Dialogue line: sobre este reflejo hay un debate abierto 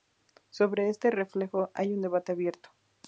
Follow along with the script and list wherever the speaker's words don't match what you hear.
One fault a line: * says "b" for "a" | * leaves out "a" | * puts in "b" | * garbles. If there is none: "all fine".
all fine